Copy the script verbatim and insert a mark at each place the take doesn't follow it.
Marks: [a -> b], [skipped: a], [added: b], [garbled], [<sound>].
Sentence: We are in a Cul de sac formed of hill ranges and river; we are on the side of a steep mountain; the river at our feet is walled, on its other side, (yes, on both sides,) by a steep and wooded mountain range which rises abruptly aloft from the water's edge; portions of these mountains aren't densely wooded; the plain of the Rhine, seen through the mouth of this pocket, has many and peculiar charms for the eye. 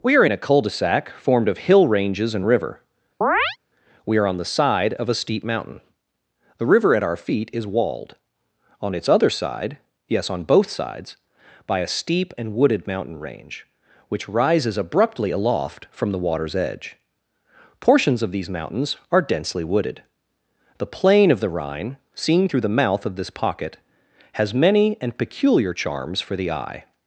We are in a Cul de sac formed of hill ranges and river; [chirp] we are on the side of a steep mountain; the river at our feet is walled, on its other side, (yes, on both sides,) by a steep and wooded mountain range which rises abruptly aloft from the water's edge; portions of these mountains [aren't -> are] densely wooded; the plain of the Rhine, seen through the mouth of this pocket, has many and peculiar charms for the eye.